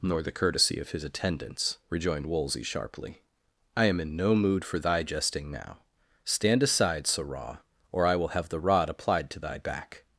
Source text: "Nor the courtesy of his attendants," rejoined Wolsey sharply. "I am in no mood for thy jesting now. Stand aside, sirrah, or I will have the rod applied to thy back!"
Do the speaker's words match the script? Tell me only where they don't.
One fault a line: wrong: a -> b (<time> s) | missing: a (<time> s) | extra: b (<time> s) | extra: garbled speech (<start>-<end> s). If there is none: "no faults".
no faults